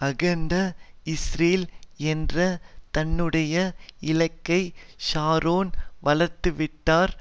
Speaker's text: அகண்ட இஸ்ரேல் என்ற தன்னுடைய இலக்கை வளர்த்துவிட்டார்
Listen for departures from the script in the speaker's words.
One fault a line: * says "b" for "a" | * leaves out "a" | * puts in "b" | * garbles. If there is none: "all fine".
* puts in "ஷரோன்"